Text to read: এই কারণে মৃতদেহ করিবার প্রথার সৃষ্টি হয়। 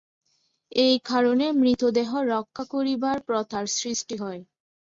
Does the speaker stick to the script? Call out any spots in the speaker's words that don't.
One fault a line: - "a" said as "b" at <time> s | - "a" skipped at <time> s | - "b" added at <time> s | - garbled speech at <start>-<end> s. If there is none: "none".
- "রক্ষা" added at 2.3 s